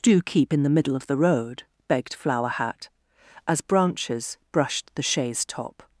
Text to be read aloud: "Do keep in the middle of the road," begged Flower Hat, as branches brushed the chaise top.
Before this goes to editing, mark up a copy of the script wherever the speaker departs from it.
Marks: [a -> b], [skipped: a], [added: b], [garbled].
"Do keep in the middle of the road," begged Flower Hat, as branches brushed the chaise top.